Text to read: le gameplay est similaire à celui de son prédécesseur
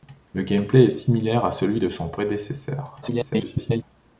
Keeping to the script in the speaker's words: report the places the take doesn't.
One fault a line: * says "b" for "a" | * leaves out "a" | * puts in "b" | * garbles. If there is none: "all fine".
* garbles